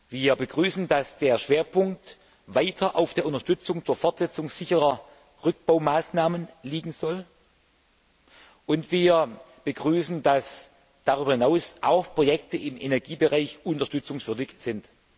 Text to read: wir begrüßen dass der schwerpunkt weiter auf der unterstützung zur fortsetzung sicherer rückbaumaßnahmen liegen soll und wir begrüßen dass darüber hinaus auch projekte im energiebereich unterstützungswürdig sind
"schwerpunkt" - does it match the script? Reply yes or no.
yes